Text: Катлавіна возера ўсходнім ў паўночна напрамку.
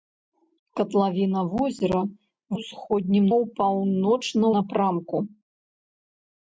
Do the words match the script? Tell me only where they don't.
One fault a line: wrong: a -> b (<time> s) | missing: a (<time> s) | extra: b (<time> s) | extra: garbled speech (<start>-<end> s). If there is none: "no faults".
no faults